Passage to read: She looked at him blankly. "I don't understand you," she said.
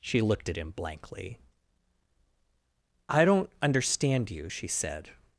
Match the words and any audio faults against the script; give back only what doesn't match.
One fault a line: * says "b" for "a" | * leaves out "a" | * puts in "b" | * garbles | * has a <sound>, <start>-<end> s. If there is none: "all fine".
all fine